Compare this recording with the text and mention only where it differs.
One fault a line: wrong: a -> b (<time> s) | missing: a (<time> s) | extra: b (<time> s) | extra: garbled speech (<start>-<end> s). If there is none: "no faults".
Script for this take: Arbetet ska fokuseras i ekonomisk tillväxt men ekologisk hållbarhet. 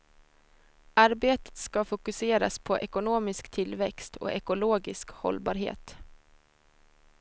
wrong: i -> på (2.6 s)
wrong: men -> och (4.2 s)